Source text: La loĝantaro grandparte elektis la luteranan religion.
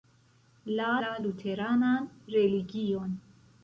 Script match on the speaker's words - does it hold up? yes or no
no